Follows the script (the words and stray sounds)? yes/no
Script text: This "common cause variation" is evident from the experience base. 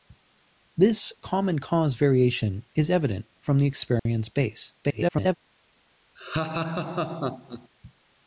no